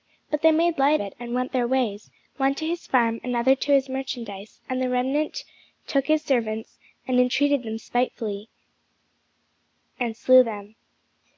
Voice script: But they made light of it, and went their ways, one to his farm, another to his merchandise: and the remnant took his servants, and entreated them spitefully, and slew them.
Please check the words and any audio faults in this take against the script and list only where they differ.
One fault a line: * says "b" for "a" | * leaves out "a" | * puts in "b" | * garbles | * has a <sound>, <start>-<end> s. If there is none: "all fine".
* leaves out "of"